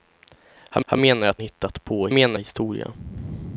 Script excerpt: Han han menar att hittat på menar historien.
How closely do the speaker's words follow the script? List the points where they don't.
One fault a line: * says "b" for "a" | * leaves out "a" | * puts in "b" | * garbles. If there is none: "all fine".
all fine